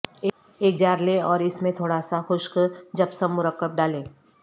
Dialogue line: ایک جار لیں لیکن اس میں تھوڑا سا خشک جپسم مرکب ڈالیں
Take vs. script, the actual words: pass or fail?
fail